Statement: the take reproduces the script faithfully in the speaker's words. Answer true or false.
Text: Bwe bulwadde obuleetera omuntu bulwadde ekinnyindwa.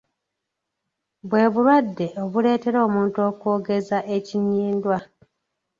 false